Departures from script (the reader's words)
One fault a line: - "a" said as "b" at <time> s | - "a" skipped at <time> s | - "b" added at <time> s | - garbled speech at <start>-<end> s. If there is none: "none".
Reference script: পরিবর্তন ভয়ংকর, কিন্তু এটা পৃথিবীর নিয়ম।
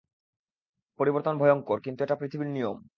none